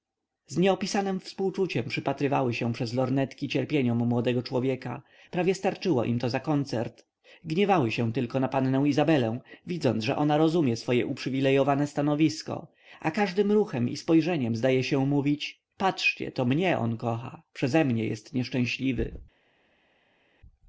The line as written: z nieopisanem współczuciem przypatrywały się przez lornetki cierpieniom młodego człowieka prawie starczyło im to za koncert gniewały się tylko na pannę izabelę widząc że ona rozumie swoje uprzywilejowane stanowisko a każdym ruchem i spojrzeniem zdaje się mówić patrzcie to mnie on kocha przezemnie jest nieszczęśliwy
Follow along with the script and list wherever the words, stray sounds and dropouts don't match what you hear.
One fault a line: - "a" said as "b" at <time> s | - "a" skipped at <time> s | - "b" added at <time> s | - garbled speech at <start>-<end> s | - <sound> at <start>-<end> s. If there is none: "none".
none